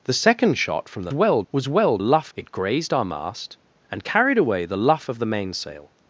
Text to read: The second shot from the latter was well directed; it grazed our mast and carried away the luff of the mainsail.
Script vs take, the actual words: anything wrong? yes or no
yes